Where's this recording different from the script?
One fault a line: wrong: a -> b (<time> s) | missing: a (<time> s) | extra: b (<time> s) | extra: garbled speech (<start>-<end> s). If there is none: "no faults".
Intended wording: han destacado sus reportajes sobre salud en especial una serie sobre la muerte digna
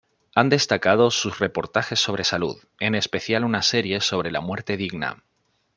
no faults